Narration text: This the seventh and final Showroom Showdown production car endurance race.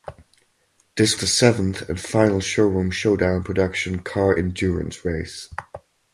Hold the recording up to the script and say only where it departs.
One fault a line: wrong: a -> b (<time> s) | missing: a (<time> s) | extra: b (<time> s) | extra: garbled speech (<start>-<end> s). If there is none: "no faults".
no faults